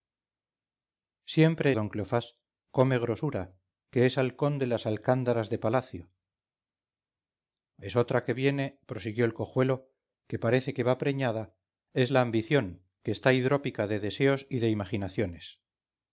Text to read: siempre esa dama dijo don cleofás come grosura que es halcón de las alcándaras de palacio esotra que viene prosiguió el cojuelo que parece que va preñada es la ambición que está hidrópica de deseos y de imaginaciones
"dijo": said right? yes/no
no